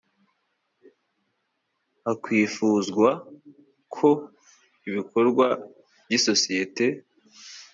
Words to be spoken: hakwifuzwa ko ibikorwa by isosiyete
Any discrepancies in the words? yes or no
no